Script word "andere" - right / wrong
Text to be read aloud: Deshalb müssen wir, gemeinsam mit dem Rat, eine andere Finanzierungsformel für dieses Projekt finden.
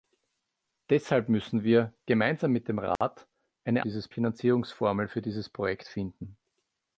wrong